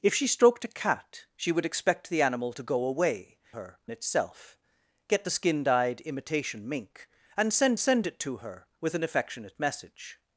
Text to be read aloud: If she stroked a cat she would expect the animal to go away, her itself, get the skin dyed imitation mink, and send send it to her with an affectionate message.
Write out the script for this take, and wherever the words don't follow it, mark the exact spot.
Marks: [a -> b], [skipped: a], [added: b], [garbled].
If she stroked a cat she would expect the animal to go away, her itself, get the skin dyed imitation mink, and send send it to her with an affectionate message.